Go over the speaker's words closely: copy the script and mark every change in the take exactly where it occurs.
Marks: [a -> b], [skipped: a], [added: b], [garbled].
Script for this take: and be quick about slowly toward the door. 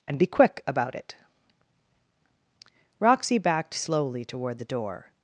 and be quick about [added: it Roxy backed] slowly toward the door.